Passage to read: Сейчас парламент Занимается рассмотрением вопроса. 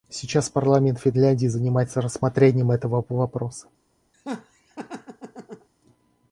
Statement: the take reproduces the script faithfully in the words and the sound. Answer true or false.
false